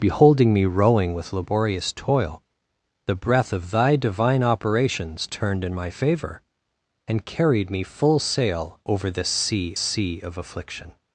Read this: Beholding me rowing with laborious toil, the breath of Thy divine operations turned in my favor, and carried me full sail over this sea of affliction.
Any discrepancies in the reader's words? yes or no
yes